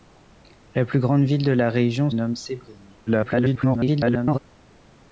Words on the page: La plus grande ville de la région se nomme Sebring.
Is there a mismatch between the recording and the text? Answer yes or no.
yes